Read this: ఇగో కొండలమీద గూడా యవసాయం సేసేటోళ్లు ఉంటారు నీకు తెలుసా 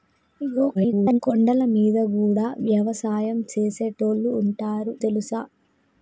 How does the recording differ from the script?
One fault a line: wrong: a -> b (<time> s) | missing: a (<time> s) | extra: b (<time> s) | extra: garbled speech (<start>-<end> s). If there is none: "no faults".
extra: garbled speech (0.7-1.2 s)
missing: నీకు (4.9 s)